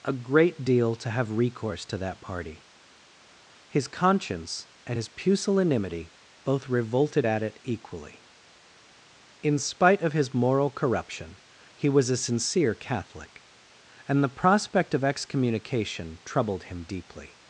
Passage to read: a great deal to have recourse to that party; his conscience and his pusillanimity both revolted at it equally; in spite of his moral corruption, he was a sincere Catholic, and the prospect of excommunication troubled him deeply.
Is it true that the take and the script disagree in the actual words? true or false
false